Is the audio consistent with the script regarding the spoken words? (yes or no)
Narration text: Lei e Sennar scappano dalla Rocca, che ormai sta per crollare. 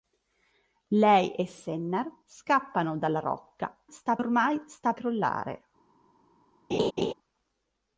no